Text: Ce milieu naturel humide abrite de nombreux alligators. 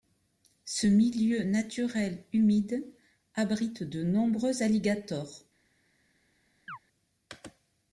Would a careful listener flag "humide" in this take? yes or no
no